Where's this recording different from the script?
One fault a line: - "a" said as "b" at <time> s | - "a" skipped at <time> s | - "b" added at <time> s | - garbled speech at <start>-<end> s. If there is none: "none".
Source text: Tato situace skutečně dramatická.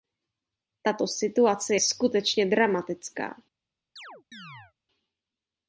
none